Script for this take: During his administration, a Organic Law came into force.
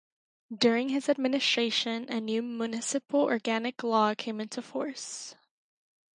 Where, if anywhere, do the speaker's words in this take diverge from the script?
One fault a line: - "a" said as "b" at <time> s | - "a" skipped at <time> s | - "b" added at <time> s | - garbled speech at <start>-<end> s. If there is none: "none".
- "new Municipal" added at 2.2 s